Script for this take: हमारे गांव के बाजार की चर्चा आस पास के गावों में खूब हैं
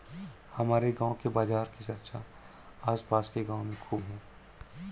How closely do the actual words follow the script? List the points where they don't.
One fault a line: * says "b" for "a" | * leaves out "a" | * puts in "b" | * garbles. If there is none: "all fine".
all fine